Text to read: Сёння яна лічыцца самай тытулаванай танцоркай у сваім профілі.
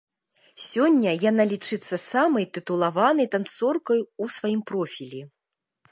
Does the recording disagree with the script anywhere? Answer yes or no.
no